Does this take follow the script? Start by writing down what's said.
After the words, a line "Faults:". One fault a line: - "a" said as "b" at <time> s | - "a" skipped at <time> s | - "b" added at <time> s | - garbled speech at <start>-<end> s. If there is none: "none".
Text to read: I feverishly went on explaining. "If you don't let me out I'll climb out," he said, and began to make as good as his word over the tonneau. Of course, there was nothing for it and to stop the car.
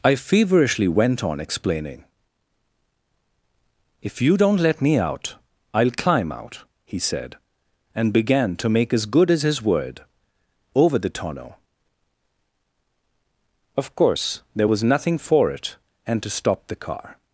I feverishly went on explaining. "If you don't let me out I'll climb out," he said, and began to make as good as his word over the tonneau. Of course, there was nothing for it and to stop the car.
Faults:
none